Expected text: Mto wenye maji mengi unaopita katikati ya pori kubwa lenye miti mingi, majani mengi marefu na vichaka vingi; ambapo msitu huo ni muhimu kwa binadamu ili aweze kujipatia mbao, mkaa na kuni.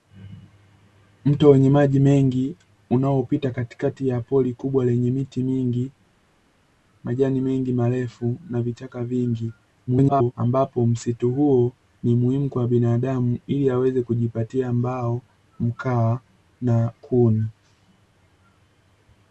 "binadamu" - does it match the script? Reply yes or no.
yes